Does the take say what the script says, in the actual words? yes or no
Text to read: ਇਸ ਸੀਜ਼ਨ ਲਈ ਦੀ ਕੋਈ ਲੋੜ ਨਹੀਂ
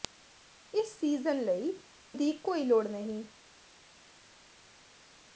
yes